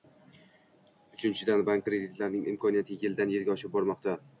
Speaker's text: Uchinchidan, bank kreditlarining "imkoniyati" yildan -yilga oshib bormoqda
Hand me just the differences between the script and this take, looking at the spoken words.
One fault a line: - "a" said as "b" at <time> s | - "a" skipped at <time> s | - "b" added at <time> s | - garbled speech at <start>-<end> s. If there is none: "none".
none